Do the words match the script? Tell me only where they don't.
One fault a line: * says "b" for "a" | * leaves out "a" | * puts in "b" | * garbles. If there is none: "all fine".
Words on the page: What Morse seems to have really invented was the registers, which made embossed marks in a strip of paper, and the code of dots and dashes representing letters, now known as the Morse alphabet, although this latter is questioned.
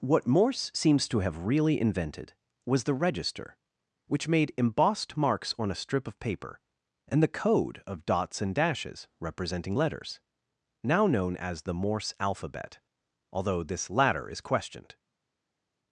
* says "register" for "registers"
* says "on" for "in"